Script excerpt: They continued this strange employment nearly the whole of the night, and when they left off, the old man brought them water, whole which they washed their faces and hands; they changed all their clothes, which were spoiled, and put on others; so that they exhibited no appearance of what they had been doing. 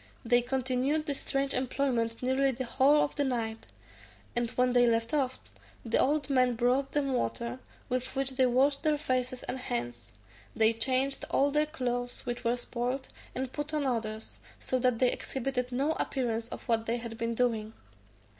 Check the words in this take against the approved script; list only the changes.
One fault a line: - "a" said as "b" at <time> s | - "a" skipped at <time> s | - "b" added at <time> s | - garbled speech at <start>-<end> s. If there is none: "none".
- "whole" said as "with" at 7.9 s